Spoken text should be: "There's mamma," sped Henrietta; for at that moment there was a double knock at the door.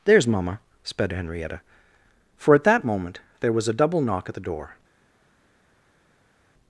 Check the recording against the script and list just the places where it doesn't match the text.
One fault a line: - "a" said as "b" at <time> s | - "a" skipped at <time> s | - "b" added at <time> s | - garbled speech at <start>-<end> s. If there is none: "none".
none